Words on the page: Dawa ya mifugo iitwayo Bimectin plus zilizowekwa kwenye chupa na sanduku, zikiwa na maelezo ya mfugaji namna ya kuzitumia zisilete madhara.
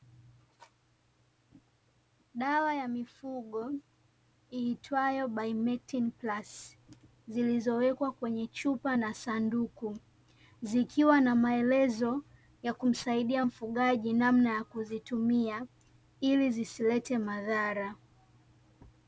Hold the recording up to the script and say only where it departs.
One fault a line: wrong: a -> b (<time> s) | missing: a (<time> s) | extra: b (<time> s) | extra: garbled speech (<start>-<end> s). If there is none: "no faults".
extra: kumsaidia (12.7 s)
extra: ili (16.2 s)